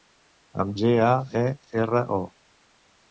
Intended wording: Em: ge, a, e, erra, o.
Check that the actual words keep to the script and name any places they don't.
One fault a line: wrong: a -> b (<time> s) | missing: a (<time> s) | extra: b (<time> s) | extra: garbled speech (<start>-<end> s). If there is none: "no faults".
no faults